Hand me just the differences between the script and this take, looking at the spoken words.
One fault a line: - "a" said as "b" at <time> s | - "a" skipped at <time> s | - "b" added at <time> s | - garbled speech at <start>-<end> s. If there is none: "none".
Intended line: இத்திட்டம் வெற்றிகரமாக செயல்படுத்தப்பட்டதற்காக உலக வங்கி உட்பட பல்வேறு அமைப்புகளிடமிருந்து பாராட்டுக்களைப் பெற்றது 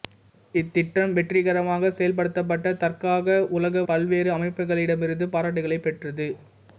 - "வங்கி உட்பட" skipped at 3.8 s